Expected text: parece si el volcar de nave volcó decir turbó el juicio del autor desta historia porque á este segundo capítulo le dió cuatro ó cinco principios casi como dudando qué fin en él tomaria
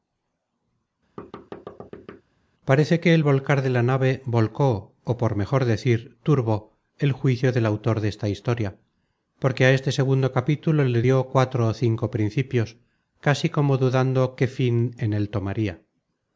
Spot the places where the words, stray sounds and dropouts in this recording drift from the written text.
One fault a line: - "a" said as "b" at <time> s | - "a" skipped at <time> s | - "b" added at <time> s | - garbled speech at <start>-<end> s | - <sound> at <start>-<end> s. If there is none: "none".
- thud at 1.2-2.2 s
- "si" said as "que" at 3.0 s
- "la" added at 3.7 s
- "ó por mejor" added at 5.0 s